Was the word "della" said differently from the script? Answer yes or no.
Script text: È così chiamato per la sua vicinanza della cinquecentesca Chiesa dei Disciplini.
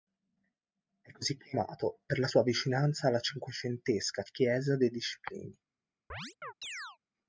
yes